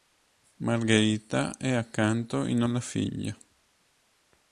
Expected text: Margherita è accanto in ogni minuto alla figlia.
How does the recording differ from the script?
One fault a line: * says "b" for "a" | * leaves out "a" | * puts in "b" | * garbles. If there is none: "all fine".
* leaves out "ogni minuto"